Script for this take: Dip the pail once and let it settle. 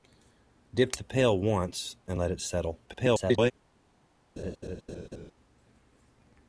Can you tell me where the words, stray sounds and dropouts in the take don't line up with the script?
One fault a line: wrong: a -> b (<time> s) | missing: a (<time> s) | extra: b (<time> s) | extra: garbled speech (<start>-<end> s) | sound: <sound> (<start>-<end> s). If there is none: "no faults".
extra: garbled speech (2.9-3.5 s)
sound: laugh (4.4-5.3 s)